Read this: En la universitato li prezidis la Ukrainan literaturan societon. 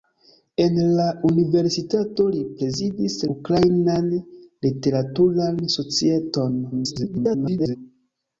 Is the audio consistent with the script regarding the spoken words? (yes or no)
no